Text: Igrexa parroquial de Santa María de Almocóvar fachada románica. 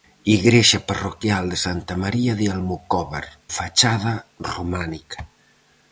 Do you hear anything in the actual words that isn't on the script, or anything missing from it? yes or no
no